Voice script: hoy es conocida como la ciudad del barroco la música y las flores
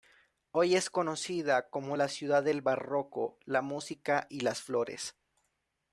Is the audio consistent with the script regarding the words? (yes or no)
yes